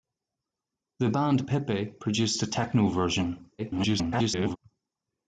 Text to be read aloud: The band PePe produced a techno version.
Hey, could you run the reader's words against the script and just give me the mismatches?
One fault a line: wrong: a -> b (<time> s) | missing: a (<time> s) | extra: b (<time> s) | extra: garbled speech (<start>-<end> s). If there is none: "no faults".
extra: garbled speech (3.6-4.6 s)